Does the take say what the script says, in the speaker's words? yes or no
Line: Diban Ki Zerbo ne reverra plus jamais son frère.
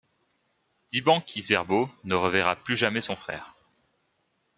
yes